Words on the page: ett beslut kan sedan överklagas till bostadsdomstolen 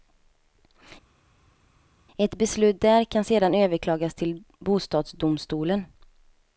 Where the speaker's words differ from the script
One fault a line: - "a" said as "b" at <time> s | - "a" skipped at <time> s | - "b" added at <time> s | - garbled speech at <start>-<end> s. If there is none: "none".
- "där" added at 2.8 s